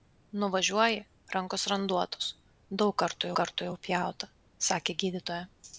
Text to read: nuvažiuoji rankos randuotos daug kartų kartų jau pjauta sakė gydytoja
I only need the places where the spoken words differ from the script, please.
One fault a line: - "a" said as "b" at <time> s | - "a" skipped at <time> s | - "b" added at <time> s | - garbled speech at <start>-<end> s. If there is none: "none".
none